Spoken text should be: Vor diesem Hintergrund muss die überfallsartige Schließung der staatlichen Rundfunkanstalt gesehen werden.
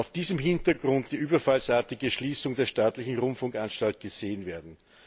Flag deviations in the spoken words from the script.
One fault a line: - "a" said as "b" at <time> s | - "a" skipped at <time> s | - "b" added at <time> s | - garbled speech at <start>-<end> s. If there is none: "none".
- "muss" skipped at 1.1 s